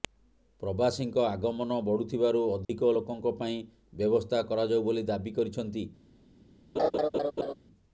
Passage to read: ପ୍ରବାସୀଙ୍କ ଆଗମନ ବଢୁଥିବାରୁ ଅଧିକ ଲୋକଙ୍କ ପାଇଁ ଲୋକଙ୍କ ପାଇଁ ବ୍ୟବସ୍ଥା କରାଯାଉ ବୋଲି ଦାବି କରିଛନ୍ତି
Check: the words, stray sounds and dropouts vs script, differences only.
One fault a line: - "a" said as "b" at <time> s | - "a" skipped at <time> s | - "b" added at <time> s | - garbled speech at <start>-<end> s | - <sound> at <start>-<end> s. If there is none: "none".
- dropout at 2.6-2.7 s
- "ଲୋକଙ୍କ ପାଇଁ" skipped at 3.6 s
- laugh at 6.8-7.5 s